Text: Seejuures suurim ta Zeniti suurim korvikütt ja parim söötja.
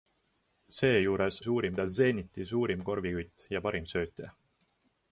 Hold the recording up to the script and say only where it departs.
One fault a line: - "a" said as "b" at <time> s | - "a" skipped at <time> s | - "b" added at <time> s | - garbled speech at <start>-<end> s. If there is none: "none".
none